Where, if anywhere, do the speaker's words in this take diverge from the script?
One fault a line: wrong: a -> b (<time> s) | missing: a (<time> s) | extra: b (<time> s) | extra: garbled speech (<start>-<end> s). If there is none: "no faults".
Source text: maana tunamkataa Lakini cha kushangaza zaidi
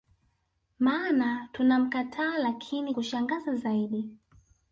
missing: cha (2.9 s)